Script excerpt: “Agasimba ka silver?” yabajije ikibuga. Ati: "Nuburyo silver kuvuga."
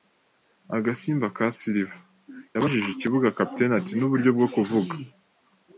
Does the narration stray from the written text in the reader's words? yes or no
yes